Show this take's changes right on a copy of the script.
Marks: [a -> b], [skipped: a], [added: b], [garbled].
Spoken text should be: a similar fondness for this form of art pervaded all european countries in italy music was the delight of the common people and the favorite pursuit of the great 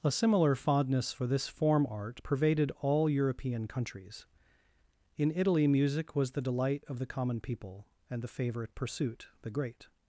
a similar fondness for this form [skipped: of] art pervaded all european countries in italy music was the delight of the common people and the favorite pursuit [skipped: of] the great